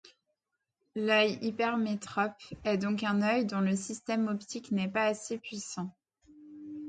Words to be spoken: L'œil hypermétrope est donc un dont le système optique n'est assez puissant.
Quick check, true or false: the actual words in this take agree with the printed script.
false